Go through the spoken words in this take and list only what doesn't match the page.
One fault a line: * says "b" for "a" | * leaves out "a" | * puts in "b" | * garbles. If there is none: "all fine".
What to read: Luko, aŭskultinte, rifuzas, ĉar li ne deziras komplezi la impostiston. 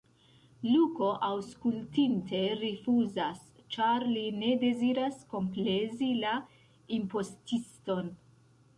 all fine